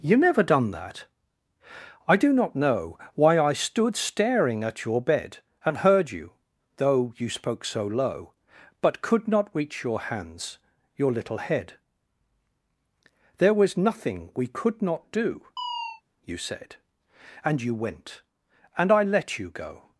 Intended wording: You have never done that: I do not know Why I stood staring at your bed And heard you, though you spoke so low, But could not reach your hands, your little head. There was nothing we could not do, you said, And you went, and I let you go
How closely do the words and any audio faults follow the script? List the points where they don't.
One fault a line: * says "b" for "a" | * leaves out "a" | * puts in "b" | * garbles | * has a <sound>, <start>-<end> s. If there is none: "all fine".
* leaves out "have"
* has a chirp, 15.6-16.0 s